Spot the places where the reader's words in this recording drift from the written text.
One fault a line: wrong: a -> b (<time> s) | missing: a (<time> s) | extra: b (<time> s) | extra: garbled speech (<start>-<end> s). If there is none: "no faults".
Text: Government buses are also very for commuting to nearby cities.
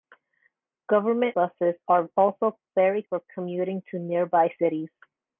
no faults